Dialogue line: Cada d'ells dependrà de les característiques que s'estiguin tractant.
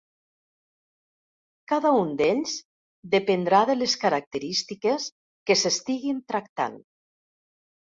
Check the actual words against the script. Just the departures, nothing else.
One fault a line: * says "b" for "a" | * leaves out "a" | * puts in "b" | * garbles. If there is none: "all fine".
* puts in "un"